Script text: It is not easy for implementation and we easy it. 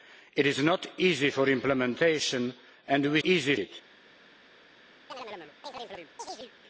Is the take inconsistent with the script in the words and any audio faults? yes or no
yes